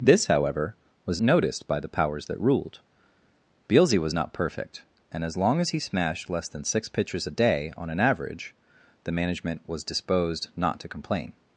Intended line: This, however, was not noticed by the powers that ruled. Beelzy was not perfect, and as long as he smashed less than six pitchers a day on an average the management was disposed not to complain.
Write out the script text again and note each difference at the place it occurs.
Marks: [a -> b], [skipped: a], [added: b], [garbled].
This, however, was [skipped: not] noticed by the powers that ruled. Beelzy was not perfect, and as long as he smashed less than six pitchers a day on an average the management was disposed not to complain.